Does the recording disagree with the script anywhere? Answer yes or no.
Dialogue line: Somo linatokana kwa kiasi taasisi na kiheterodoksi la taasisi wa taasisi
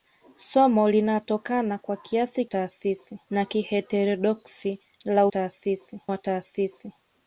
no